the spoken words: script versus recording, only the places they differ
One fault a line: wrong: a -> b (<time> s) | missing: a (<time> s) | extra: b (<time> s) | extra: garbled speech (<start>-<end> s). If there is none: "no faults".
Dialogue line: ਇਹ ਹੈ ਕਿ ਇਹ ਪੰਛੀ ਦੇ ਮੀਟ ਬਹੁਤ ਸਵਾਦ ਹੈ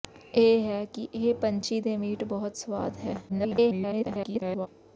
extra: garbled speech (3.3-4.7 s)